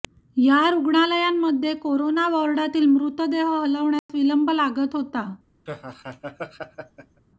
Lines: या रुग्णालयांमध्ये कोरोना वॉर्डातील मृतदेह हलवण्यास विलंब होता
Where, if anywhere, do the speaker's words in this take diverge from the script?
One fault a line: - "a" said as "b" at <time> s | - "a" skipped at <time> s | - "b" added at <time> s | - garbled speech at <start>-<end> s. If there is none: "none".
- "लागत" added at 4.5 s